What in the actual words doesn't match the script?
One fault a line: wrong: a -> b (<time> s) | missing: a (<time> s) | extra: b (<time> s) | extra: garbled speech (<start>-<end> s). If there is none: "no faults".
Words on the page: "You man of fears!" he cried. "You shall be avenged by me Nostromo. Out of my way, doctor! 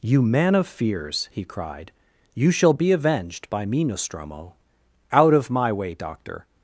no faults